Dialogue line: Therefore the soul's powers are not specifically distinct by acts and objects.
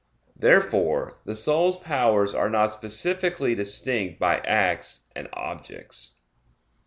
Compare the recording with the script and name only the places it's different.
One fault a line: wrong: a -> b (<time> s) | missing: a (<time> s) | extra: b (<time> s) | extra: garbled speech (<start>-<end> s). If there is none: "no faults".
no faults